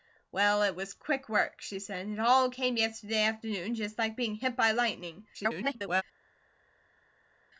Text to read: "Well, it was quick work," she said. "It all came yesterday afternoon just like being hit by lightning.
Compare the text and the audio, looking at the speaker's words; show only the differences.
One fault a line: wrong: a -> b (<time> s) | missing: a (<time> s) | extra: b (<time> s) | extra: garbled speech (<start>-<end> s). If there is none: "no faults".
extra: garbled speech (5.3-6.0 s)